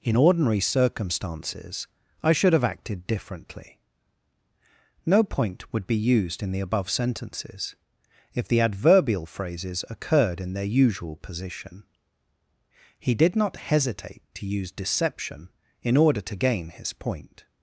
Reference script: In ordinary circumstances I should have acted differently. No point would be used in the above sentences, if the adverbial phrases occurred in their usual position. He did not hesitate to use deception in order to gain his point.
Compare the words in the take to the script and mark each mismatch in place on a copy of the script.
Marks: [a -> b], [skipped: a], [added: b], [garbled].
In ordinary circumstances I should have acted differently. No point would be used in the above sentences, if the adverbial phrases occurred in their usual position. He did not hesitate to use deception in order to gain his point.